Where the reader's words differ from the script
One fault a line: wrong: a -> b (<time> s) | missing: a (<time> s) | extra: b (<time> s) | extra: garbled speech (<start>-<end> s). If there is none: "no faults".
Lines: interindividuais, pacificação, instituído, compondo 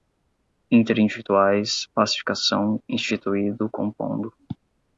no faults